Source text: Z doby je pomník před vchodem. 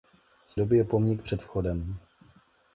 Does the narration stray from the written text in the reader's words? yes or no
no